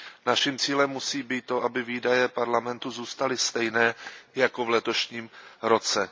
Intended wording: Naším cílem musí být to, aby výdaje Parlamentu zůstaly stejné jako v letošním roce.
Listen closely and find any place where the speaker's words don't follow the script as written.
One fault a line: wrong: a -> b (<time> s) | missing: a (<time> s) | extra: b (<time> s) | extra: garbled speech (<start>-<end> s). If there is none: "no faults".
no faults